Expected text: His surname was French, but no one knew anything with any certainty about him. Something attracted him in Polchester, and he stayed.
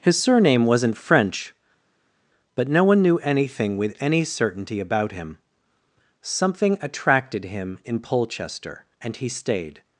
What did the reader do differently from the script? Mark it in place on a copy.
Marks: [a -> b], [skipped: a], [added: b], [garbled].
His surname [was -> wasn't] French, but no one knew anything with any certainty about him. Something attracted him in Polchester, and he stayed.